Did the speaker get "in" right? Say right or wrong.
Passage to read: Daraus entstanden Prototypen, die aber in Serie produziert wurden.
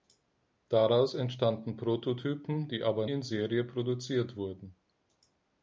right